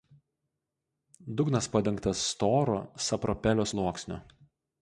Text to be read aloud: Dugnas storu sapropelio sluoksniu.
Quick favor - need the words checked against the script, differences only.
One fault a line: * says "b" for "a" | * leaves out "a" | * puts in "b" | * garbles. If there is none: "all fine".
* puts in "padengtas"